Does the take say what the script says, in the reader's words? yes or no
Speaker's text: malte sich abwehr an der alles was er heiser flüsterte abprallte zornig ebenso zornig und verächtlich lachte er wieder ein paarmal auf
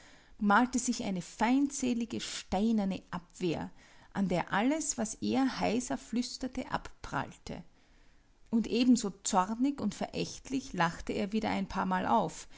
no